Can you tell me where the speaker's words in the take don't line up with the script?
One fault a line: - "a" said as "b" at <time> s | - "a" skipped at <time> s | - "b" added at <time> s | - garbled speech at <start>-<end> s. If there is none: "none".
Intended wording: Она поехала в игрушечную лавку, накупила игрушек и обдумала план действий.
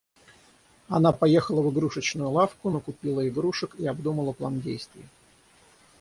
none